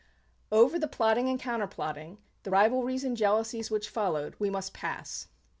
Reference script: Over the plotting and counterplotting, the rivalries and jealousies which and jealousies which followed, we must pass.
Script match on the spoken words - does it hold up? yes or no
no